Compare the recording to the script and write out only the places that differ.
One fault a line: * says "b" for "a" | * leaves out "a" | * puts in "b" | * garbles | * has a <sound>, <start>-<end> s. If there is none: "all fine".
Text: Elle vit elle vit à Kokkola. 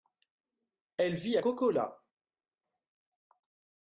* leaves out "elle vit"